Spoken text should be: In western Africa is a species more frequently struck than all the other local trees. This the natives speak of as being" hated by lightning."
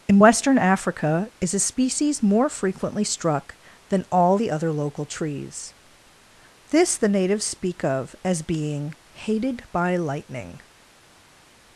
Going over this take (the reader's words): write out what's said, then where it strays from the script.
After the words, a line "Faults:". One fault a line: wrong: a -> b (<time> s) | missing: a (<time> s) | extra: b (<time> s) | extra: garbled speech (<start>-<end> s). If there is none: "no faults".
In western Africa is a species more frequently struck than all the other local trees. This the natives speak of as being" hated by lightning."
Faults:
no faults